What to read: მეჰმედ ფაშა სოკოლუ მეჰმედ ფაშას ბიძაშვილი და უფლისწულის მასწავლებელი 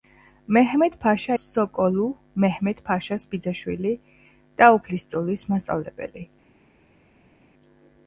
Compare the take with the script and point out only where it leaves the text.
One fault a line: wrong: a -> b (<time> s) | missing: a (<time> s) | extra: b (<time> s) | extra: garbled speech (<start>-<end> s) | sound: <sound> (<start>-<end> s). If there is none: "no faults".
no faults